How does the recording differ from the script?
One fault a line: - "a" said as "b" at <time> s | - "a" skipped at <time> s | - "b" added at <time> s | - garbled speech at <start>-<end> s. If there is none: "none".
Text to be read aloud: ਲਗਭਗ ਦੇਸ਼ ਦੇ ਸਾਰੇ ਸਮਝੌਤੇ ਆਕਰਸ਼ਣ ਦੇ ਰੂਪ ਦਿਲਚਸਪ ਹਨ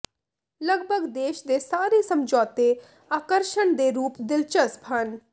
none